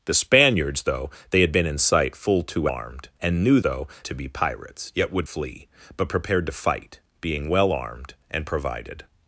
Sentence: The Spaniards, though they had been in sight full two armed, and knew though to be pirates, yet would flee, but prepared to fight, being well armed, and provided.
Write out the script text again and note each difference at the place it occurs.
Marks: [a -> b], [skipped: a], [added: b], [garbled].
The Spaniards, though they had been in sight full two armed, and knew though to be pirates, yet would flee, but prepared to fight, being well armed, and provided.